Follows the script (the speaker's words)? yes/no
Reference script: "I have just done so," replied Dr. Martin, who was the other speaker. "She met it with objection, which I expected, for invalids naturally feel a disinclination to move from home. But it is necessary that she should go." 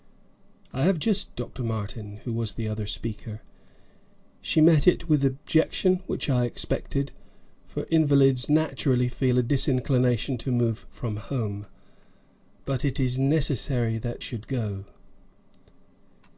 no